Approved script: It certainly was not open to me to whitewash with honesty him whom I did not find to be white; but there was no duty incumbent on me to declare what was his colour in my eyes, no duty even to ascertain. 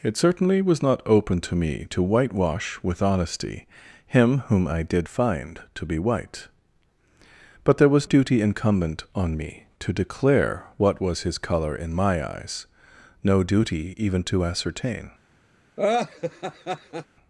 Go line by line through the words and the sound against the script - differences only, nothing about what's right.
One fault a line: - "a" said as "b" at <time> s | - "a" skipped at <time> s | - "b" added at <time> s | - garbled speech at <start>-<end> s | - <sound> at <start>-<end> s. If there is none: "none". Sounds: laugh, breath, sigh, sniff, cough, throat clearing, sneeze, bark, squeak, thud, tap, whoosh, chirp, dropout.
- "not" skipped at 5.1 s
- "no" skipped at 8.1 s
- laugh at 15.8-17.1 s